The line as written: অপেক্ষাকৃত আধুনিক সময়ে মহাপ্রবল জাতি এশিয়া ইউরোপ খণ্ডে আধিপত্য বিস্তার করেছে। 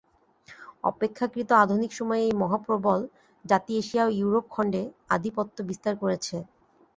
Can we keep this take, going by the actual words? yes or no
no